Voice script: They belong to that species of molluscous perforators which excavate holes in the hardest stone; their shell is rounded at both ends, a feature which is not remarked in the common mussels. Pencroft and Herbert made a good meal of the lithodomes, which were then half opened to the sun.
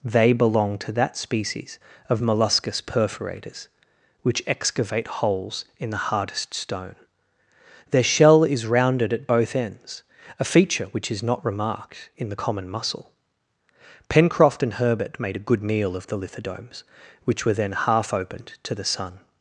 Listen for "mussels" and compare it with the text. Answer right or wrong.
wrong